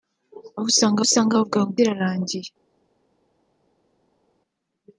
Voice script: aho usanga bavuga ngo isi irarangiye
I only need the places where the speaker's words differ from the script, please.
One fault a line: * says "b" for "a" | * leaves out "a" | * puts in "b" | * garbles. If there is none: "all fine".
* puts in "usanga"
* leaves out "isi"